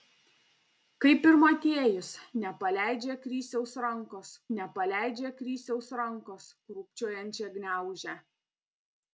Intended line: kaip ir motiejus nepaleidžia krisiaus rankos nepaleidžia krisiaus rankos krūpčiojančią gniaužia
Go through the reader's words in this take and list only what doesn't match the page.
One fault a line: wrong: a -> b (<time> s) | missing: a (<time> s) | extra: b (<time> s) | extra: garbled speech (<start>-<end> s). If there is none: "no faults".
no faults